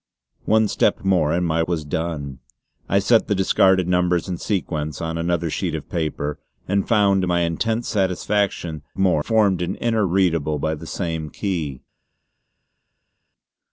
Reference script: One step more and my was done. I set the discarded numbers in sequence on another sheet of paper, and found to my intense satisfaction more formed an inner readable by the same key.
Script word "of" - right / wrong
right